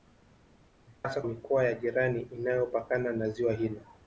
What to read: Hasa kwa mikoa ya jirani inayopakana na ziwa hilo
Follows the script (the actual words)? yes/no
no